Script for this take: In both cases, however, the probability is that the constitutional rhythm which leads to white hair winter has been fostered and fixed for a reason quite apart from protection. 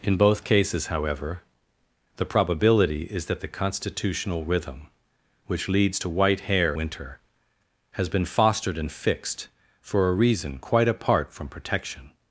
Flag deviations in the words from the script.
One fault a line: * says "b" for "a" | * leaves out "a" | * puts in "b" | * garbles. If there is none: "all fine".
all fine